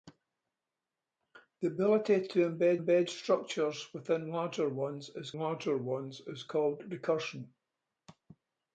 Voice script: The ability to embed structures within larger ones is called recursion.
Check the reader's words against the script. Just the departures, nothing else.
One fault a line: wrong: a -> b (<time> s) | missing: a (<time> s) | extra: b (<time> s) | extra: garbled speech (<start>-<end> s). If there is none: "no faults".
extra: embed (2.8 s)
extra: larger ones is (5.4 s)